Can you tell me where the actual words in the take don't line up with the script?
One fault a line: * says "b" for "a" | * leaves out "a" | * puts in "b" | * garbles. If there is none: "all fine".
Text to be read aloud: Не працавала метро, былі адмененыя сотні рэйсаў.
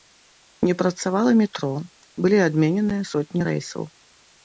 all fine